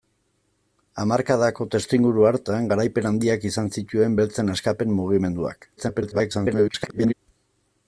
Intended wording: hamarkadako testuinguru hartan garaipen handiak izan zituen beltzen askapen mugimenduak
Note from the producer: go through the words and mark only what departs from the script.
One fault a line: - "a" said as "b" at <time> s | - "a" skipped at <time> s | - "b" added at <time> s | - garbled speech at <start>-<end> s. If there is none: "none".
- garbled speech at 5.8-7.1 s